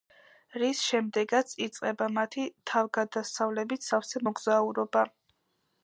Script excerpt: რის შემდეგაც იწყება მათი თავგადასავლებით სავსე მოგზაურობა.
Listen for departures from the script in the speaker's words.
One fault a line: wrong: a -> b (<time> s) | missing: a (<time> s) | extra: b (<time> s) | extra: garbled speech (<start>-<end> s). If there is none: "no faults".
no faults